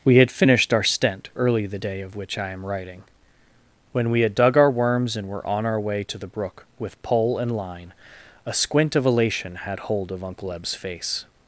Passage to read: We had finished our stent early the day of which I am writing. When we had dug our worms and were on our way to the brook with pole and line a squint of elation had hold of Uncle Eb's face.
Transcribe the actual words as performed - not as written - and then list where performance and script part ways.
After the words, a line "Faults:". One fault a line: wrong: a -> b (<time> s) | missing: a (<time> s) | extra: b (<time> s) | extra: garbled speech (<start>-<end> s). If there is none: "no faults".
We had finished our stent early the day of which I am writing. When we had dug our worms and were on our way to the brook with pole and line a squint of elation had hold of Uncle Eb's face.
Faults:
no faults